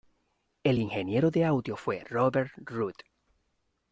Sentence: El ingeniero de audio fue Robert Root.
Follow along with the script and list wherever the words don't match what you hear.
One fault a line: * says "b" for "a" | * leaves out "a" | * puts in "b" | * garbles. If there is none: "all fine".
all fine